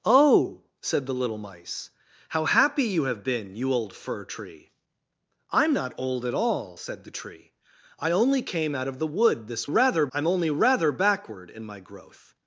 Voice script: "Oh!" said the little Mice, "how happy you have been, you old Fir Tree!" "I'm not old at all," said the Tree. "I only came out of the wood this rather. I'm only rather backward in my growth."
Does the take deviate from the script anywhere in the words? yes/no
no